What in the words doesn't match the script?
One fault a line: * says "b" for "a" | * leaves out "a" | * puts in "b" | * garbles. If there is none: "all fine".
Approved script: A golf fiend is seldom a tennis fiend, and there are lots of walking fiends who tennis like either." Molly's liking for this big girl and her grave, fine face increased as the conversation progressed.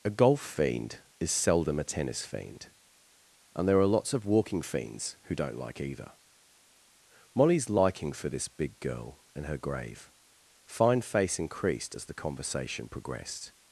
* says "don't" for "tennis"